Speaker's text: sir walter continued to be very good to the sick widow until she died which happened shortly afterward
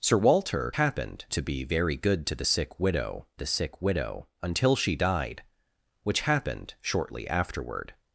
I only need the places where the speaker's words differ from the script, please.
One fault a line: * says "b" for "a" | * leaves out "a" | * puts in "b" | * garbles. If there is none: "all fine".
* says "happened" for "continued"
* puts in "the sick widow"